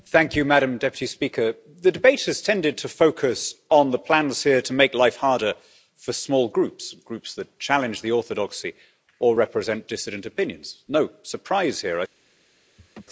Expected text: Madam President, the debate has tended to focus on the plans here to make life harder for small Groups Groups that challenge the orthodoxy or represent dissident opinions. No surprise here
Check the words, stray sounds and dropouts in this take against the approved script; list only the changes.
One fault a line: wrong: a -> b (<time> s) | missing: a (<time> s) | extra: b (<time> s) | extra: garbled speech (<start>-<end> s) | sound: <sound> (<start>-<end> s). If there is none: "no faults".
sound: laugh (12.8-13.0 s)